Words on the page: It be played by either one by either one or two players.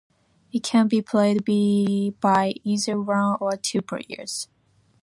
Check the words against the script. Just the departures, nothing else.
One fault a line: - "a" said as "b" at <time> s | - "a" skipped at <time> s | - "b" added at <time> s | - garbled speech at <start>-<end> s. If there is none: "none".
- "can" added at 0.6 s
- "by either one" skipped at 3.4 s